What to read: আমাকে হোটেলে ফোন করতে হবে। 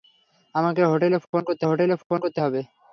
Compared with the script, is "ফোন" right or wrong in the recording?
right